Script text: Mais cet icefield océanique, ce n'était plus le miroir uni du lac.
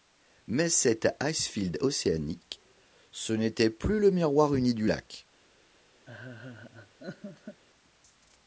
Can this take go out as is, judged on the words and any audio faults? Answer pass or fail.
fail